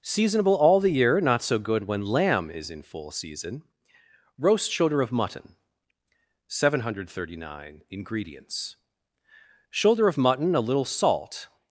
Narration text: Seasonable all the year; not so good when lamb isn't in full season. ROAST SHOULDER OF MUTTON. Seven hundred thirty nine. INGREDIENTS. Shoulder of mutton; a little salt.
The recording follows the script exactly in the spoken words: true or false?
false